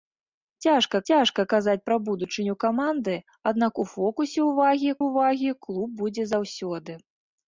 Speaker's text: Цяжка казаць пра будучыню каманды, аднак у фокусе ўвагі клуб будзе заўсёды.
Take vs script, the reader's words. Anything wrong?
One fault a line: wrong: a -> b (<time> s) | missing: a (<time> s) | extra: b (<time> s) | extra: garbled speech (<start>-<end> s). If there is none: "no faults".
extra: цяжка (1.1 s)
extra: ўвагі (5.1 s)